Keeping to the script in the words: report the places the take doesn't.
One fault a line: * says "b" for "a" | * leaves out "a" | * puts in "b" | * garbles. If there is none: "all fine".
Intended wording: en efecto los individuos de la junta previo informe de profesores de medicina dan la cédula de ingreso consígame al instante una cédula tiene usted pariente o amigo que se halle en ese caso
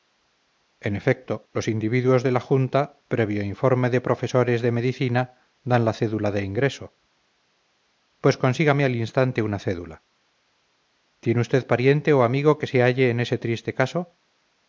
* puts in "pues"
* puts in "triste"